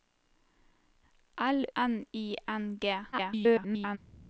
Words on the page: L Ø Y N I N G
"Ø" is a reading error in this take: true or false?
true